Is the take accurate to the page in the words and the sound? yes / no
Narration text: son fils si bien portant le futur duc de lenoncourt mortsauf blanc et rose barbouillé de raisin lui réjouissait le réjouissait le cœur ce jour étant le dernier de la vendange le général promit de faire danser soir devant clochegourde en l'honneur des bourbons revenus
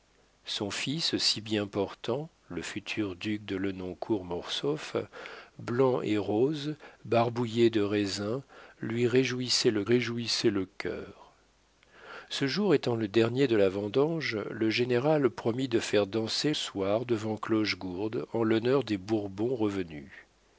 yes